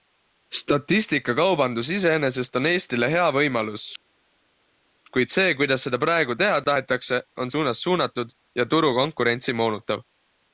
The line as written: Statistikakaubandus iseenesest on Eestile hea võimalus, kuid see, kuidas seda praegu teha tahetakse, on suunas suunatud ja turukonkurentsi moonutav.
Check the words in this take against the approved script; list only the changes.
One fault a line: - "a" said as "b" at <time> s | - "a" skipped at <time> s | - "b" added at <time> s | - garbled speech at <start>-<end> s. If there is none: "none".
none